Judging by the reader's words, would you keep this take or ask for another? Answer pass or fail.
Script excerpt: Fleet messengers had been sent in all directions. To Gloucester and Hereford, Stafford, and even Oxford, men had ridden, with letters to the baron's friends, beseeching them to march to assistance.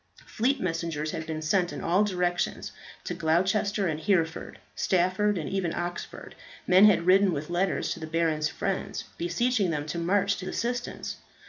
pass